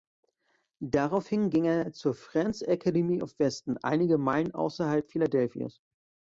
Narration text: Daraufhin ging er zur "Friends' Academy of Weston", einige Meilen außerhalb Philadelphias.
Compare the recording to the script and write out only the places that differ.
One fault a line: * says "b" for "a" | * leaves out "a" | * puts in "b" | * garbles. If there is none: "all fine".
all fine